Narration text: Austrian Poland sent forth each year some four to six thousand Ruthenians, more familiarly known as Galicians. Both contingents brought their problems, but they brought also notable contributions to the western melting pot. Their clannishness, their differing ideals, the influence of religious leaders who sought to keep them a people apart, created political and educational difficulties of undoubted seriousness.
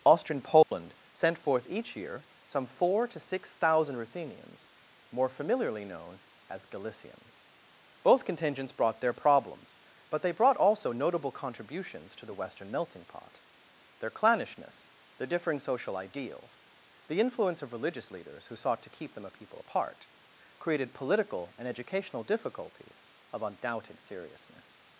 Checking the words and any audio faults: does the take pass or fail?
fail